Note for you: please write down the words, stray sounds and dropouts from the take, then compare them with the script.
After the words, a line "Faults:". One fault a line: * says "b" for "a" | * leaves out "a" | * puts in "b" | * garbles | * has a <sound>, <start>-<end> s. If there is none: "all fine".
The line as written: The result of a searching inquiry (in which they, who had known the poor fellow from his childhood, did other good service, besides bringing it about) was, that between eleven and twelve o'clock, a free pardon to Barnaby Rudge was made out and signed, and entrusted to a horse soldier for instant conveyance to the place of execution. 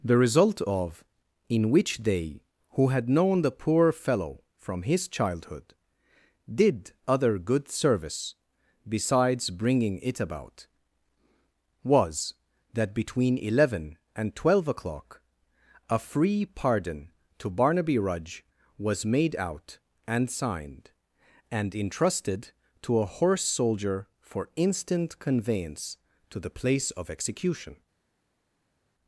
The result of (in which they, who had known the poor fellow from his childhood, did other good service, besides bringing it about) was, that between eleven and twelve o'clock, a free pardon to Barnaby Rudge was made out and signed, and entrusted to a horse soldier for instant conveyance to the place of execution.
Faults:
* leaves out "a searching inquiry"